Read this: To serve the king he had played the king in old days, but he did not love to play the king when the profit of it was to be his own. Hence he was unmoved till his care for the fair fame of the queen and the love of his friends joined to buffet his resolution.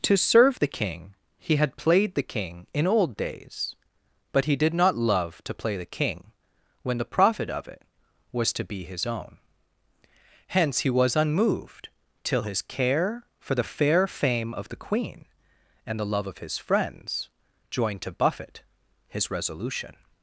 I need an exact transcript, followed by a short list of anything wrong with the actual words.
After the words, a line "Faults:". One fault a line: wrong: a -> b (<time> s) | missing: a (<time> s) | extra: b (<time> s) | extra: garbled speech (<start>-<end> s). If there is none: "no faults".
To serve the king he had played the king in old days, but he did not love to play the king when the profit of it was to be his own. Hence he was unmoved till his care for the fair fame of the queen and the love of his friends joined to buffet his resolution.
Faults:
no faults